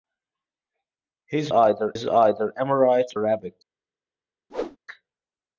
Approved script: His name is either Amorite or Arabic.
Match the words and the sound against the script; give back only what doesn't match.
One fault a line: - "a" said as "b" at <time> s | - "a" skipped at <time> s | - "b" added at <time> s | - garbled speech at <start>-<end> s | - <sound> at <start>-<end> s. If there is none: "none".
- "name" said as "either" at 1.5 s
- "or" skipped at 3.1 s
- whoosh at 4.5-4.8 s